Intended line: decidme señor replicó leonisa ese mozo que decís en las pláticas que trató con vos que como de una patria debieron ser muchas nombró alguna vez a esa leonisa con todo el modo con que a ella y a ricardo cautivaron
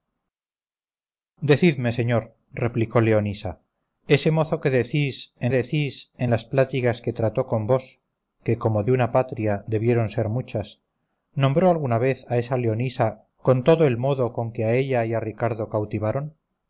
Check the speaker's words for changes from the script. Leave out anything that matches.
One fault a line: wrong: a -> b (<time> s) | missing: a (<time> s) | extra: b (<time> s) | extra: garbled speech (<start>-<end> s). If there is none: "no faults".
extra: decís en (5.5 s)